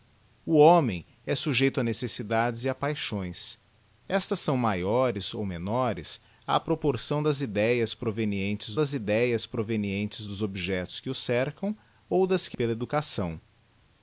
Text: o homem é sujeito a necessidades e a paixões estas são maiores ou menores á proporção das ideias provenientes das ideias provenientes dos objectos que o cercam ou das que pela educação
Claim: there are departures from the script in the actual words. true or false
false